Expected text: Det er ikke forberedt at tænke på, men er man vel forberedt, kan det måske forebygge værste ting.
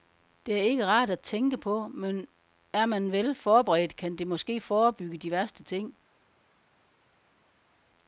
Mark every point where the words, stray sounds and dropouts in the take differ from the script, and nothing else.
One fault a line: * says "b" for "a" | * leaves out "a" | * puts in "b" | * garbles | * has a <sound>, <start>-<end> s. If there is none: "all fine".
* says "rart" for "forberedt"
* puts in "de"